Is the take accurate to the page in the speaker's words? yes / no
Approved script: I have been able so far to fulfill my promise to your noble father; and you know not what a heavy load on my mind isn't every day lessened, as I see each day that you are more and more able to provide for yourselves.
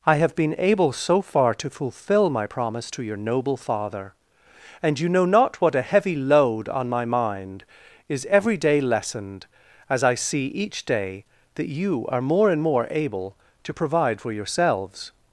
no